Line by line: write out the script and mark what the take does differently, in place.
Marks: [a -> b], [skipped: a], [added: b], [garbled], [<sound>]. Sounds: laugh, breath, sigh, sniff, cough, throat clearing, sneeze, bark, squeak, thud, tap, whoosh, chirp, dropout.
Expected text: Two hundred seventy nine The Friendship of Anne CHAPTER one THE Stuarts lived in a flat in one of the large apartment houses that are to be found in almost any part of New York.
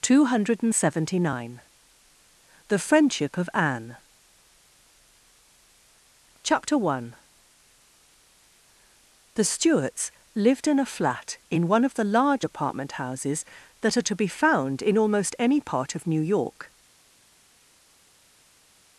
Two hundred seventy nine The Friendship of Anne CHAPTER one THE Stuarts lived in a flat in one of the large apartment houses that are to be found in almost any part of New York.